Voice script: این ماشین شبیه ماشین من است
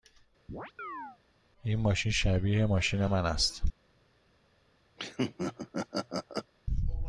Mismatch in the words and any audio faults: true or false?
true